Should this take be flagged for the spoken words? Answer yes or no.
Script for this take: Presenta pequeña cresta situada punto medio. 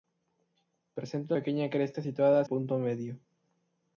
no